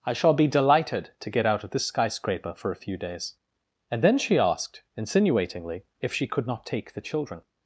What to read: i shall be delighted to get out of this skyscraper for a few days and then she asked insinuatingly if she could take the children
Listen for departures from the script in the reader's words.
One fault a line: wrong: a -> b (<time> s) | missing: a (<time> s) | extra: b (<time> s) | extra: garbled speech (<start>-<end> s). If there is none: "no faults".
extra: not (6.5 s)